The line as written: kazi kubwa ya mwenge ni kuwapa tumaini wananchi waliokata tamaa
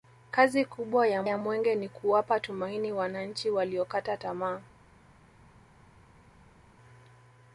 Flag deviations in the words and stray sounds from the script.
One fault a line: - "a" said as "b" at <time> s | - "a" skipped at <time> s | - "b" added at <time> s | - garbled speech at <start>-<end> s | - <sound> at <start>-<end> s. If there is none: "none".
- "ya" added at 1.2 s